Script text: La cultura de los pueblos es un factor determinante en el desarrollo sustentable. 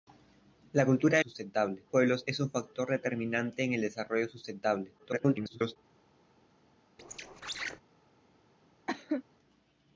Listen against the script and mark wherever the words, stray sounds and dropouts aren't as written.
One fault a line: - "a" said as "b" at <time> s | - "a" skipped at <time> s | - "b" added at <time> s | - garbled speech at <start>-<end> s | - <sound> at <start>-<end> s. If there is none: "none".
- "los" said as "sustentable" at 1.2 s
- garbled speech at 5.0-5.8 s
- squeak at 7.0-7.8 s
- cough at 8.9-9.2 s